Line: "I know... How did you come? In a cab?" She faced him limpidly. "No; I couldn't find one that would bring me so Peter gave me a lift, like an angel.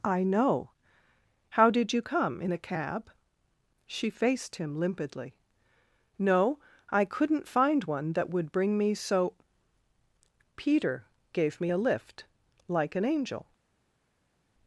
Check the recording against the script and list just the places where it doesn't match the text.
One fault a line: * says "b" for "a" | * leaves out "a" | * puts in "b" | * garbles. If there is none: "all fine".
all fine